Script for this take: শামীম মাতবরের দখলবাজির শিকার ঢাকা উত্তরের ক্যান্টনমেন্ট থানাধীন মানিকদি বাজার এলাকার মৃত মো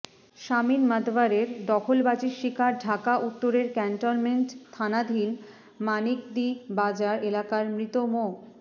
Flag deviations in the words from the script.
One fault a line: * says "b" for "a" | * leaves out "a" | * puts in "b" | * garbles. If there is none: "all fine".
all fine